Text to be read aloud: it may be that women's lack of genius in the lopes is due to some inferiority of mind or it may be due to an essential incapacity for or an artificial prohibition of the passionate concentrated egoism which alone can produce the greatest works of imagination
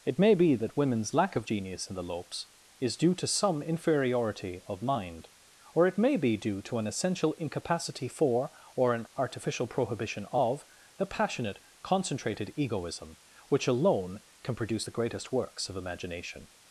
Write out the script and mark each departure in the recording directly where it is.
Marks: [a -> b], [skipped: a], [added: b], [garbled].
it may be that women's lack of genius in the lopes is due to some inferiority of mind or it may be due to an essential incapacity for or an artificial prohibition of the passionate concentrated egoism which alone can produce the greatest works of imagination